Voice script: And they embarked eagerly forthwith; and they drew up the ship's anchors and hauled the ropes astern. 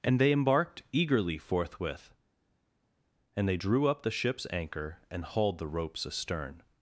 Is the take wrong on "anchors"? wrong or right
wrong